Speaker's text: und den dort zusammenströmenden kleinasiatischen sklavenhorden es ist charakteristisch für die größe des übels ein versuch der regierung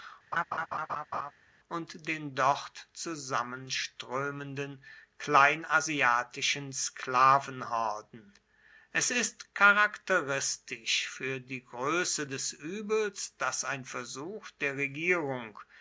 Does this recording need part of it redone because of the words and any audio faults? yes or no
yes